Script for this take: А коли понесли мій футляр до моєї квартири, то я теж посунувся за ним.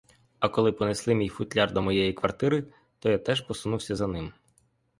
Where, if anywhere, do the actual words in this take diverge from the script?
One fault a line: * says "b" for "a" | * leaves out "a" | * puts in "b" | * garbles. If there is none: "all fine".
all fine